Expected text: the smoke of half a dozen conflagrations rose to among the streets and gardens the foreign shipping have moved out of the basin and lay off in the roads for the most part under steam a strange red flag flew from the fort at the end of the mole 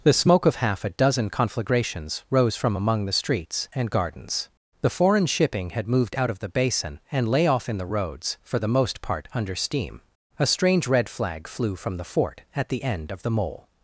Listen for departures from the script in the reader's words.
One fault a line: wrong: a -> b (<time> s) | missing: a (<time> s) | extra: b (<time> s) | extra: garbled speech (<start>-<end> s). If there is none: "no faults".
wrong: to -> from (2.5 s)
wrong: have -> had (5.7 s)